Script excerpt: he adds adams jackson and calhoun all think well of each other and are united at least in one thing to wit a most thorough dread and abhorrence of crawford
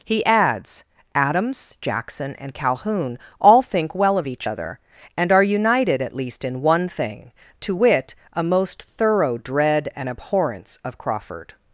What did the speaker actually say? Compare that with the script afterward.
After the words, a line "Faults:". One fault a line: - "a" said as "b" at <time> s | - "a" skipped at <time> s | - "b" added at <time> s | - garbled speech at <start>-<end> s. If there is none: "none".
he adds adams jackson and calhoun all think well of each other and are united at least in one thing to wit a most thorough dread and abhorrence of crawford
Faults:
none